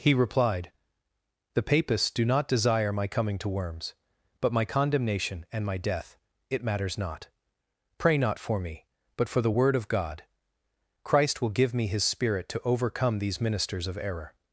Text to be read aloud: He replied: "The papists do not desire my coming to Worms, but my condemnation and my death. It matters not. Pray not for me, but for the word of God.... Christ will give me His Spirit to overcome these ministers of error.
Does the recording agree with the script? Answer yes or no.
yes